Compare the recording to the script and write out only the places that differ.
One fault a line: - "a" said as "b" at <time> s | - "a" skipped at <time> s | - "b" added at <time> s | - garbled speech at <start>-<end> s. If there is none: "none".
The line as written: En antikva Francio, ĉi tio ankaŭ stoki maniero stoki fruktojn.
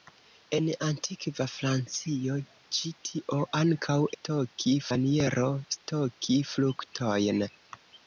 none